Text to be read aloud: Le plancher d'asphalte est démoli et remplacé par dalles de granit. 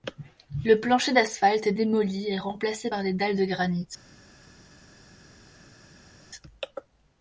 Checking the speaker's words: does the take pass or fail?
fail